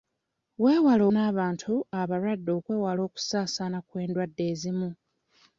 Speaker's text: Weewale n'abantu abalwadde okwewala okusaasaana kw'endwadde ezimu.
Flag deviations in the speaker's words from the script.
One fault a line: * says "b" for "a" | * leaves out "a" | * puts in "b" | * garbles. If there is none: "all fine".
all fine